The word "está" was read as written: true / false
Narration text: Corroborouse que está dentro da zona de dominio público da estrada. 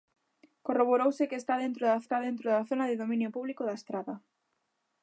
true